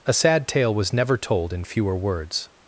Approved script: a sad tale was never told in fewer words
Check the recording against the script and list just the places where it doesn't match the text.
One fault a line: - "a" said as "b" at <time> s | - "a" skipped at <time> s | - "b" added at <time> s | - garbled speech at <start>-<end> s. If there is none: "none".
none